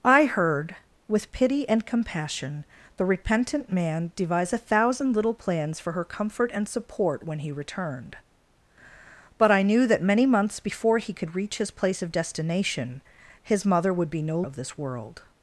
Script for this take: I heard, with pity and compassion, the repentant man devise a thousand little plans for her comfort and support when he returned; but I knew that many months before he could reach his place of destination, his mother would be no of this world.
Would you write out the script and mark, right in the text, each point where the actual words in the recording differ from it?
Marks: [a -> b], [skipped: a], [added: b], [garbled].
I heard, with pity and compassion, the repentant man devise a thousand little plans for her comfort and support when he returned; but I knew that many months before he could reach his place of destination, his mother would be no of this world.